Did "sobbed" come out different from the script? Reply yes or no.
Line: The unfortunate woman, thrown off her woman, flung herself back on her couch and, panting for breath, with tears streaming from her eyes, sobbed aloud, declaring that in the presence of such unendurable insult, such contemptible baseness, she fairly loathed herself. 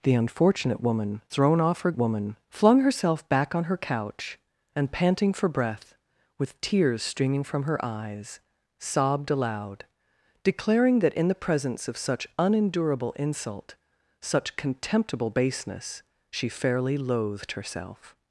no